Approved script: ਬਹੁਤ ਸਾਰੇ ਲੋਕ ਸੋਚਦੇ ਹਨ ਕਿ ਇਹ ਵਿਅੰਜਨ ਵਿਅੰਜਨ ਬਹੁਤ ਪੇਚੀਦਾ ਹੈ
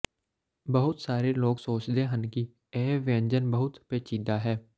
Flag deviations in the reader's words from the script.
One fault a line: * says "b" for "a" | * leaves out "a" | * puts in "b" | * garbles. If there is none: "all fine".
* leaves out "ਵਿਅੰਜਨ"